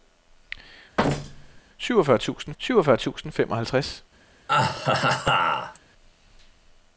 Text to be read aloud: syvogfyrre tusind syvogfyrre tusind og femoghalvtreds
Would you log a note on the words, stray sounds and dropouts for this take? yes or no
yes